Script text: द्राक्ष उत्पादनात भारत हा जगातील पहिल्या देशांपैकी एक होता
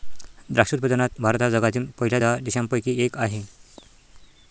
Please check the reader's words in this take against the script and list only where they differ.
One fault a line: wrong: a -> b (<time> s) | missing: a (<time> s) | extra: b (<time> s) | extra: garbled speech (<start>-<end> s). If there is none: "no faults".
extra: दहा (2.2 s)
wrong: होता -> आहे (3.2 s)